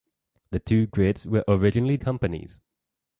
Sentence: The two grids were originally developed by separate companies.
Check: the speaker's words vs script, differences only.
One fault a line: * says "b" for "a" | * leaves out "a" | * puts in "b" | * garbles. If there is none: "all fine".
* leaves out "developed by separate"